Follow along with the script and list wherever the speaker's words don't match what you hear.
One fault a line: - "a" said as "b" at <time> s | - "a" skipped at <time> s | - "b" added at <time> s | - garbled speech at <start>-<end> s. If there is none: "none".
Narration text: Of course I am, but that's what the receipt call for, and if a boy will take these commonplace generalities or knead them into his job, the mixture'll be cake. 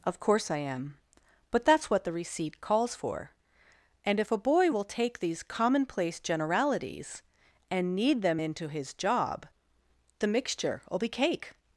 - "call" said as "calls" at 2.6 s
- "or" said as "and" at 7.7 s